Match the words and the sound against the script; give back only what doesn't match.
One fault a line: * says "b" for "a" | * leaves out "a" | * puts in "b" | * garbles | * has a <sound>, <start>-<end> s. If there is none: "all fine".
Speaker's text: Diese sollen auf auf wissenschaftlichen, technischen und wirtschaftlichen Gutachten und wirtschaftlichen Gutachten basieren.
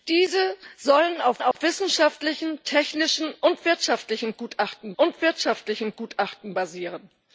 * has a dropout, 1.5-1.6 s